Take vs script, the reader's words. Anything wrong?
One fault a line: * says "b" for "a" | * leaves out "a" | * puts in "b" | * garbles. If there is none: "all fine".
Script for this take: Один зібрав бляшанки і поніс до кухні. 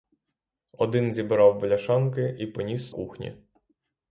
* leaves out "до"